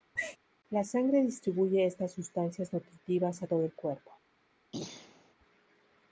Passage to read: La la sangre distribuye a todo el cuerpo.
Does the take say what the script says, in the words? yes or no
no